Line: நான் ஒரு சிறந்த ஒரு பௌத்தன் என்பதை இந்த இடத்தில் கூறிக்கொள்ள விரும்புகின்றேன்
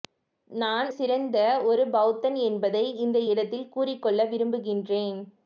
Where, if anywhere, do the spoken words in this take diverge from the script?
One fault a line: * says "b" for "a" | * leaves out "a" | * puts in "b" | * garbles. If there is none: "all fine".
* leaves out "ஒரு"